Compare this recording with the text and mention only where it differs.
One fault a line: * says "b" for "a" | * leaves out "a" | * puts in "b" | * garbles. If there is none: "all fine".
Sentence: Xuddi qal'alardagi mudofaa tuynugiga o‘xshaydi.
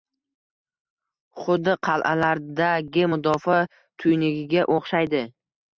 all fine